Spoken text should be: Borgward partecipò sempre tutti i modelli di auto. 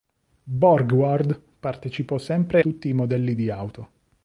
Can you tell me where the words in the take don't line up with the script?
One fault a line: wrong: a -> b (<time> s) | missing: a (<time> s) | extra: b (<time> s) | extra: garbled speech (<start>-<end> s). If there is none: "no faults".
no faults